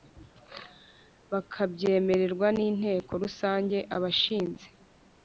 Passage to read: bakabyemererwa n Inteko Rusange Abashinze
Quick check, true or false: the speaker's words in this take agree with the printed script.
true